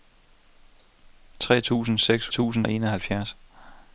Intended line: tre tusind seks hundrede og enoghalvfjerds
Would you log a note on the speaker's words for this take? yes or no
yes